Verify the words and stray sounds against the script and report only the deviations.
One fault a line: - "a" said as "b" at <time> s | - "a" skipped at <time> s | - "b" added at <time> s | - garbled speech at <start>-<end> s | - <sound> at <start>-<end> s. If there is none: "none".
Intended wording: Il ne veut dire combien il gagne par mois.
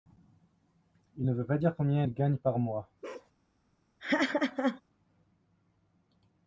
- "pas" added at 1.4 s
- bark at 3.0-3.3 s
- laugh at 4.0-4.8 s